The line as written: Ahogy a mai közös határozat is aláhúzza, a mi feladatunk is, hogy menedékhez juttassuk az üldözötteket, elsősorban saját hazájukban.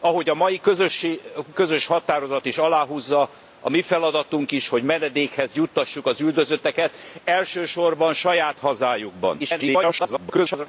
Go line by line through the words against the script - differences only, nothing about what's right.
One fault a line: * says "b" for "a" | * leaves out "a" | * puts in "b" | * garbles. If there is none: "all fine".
* leaves out "mai"
* garbles